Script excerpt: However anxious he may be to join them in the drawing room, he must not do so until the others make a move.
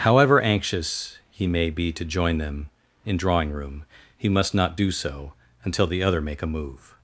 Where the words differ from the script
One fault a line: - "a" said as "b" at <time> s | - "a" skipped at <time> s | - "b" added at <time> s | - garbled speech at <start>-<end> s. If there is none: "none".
- "the" skipped at 3.2 s
- "others" said as "other" at 6.0 s